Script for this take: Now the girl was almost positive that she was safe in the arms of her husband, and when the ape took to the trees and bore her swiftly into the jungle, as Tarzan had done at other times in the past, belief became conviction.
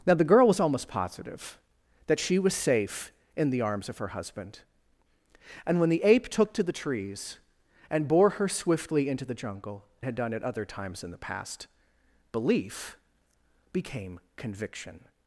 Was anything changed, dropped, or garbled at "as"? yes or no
yes